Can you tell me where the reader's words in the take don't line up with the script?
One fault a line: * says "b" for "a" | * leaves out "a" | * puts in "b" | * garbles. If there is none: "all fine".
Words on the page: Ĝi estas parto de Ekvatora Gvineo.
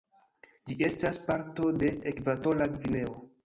all fine